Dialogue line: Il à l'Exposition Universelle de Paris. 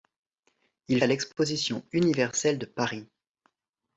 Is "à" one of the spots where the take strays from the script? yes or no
no